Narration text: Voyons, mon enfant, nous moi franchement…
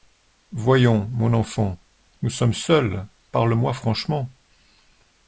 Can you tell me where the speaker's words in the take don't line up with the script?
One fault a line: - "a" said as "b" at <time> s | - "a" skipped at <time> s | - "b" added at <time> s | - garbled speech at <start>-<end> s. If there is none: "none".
- "sommes seuls parle" added at 2.3 s